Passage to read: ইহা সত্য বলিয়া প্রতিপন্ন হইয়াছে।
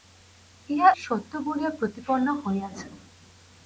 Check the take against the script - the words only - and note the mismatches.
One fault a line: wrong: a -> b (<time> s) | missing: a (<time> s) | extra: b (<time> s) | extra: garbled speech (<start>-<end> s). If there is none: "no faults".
no faults